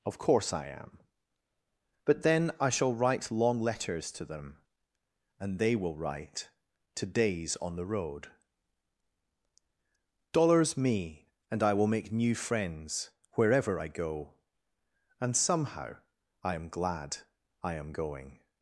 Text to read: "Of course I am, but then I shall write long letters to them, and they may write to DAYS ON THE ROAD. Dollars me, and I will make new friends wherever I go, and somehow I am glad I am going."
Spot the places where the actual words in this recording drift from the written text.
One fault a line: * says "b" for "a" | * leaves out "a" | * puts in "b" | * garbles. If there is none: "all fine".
* says "will" for "may"